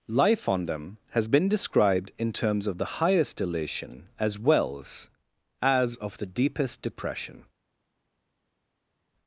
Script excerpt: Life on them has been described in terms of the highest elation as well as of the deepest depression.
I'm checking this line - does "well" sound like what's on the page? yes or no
no